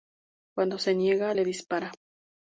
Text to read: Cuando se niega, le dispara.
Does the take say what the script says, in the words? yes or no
yes